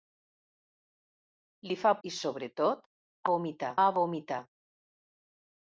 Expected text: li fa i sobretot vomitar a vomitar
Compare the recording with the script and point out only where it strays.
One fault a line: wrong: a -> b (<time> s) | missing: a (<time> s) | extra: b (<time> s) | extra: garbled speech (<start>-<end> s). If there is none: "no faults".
no faults